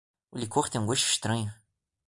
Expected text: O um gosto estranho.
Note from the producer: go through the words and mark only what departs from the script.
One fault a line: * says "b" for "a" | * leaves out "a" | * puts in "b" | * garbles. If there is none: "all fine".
* puts in "licor tem"